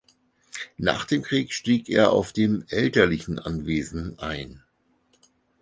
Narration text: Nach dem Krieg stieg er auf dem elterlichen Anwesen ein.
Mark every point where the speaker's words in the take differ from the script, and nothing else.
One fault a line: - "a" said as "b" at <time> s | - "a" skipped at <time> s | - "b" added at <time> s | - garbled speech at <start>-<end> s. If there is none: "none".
none